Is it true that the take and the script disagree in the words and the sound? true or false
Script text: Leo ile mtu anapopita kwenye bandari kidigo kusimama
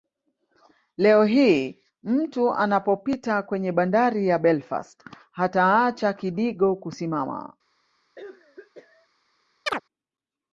true